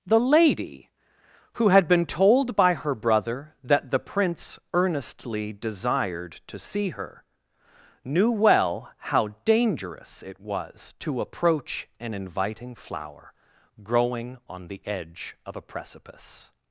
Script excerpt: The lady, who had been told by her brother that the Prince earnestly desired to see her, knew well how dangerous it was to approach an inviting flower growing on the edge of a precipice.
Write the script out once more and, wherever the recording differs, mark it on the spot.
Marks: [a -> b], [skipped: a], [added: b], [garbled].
The lady, who had been told by her brother that the Prince earnestly desired to see her, knew well how dangerous it was to approach an inviting flower growing on the edge of a precipice.